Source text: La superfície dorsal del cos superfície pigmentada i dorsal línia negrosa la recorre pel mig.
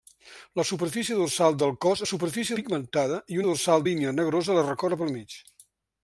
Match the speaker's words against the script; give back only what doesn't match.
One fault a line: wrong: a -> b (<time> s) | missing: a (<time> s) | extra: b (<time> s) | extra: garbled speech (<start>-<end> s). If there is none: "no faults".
no faults